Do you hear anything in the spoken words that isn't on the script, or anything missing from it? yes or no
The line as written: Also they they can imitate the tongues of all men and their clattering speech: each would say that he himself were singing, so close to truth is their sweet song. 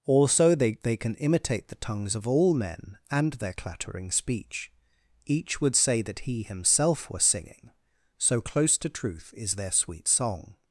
no